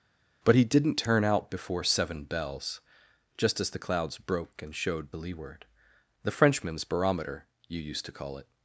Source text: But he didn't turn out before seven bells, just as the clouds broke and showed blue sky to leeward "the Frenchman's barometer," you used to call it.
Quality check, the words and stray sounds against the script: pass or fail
fail